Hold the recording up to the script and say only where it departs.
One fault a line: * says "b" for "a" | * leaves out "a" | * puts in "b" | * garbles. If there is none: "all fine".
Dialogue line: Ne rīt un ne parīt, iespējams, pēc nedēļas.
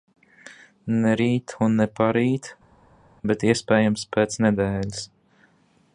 * puts in "bet"